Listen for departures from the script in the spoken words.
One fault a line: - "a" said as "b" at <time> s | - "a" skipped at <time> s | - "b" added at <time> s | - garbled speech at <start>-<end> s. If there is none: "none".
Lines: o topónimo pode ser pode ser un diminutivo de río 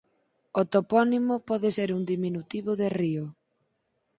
- "pode ser" skipped at 1.9 s